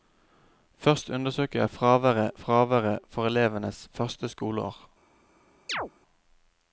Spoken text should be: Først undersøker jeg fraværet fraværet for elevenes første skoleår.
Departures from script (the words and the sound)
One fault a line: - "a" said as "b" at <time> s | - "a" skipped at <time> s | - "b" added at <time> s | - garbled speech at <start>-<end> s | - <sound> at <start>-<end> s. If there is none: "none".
- chirp at 5.7-5.9 s